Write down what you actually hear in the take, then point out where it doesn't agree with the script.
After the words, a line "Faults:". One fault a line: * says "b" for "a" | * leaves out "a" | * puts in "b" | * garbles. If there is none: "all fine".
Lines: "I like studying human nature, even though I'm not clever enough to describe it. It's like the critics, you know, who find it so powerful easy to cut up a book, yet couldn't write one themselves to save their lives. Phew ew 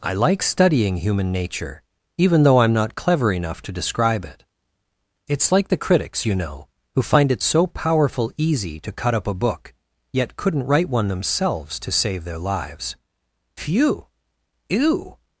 "I like studying human nature, even though I'm not clever enough to describe it. It's like the critics, you know, who find it so powerful easy to cut up a book, yet couldn't write one themselves to save their lives. Phew ew
Faults:
all fine